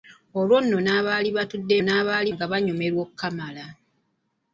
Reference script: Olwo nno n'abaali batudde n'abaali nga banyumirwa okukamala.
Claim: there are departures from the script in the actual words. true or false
false